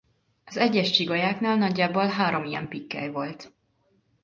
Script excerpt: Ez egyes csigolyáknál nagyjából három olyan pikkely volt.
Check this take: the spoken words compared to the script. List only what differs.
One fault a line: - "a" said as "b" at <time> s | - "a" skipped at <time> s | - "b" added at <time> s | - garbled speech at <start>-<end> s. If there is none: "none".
- "Ez" said as "Az" at 0.5 s
- "olyan" said as "ilyen" at 2.4 s